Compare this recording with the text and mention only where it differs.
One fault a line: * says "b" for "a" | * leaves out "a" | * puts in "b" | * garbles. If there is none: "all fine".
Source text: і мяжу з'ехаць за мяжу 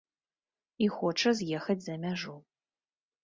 * says "хоча" for "мяжу"